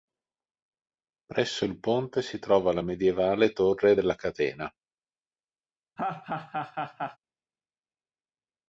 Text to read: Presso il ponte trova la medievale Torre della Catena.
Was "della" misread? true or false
false